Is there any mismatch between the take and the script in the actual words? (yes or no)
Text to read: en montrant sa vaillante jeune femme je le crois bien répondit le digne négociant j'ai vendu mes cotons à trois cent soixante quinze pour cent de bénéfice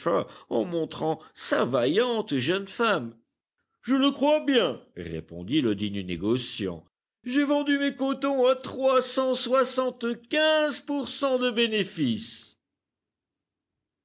no